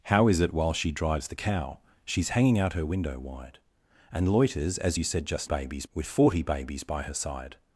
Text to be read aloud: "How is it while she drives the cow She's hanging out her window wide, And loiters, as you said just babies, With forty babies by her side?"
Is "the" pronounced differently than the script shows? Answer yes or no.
no